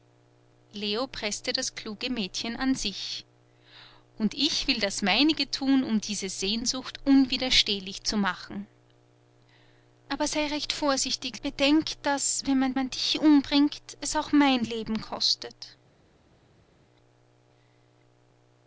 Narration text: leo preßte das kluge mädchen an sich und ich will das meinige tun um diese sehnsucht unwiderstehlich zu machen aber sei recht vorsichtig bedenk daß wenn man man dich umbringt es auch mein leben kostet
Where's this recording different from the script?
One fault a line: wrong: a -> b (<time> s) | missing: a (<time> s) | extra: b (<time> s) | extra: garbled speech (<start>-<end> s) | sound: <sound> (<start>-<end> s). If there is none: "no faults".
no faults